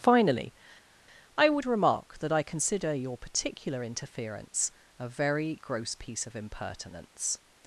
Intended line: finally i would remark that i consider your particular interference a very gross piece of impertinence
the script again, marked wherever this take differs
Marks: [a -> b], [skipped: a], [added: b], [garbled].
finally i would remark that i consider your particular interference a very gross piece of impertinence